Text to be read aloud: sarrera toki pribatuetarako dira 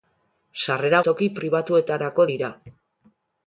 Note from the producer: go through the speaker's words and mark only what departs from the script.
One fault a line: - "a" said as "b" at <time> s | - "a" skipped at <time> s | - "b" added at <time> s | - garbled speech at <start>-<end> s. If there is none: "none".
none